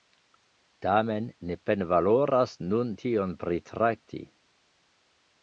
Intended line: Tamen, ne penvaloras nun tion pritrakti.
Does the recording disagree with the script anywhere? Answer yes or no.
no